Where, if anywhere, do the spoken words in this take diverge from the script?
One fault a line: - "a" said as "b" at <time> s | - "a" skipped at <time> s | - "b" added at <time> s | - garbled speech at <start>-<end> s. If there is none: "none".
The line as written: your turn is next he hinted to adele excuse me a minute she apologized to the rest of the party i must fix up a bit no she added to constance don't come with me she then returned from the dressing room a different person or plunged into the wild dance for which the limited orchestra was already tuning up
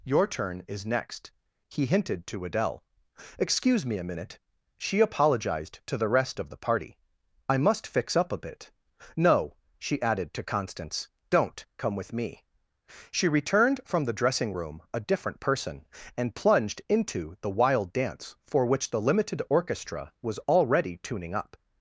- "then" skipped at 13.3 s
- "or" said as "and" at 16.1 s